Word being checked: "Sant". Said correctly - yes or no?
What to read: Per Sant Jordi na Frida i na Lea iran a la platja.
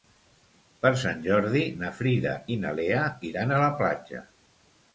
yes